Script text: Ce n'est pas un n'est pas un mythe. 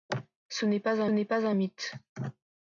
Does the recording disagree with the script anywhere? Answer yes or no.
no